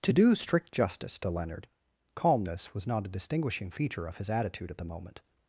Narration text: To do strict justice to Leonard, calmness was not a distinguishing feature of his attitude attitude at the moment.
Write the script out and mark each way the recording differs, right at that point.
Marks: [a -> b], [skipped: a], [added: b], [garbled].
To do strict justice to Leonard, calmness was not a distinguishing feature of his attitude [skipped: attitude] at the moment.